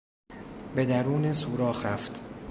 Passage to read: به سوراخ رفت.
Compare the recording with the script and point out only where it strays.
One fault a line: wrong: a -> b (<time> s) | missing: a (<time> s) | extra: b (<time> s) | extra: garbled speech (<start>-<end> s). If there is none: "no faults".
extra: درون (0.8 s)